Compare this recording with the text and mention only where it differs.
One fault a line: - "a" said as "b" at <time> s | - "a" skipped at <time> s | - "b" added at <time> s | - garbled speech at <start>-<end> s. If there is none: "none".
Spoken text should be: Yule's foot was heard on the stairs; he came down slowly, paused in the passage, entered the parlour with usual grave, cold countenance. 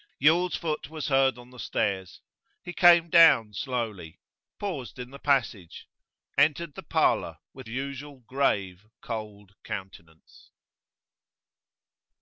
none